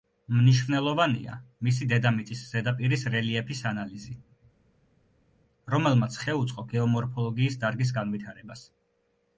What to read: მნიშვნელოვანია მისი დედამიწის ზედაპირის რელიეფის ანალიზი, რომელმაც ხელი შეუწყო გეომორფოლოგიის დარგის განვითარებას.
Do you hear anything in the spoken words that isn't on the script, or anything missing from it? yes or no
yes